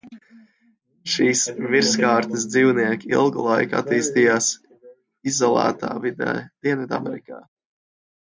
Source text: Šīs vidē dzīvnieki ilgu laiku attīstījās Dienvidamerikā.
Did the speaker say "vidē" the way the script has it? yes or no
no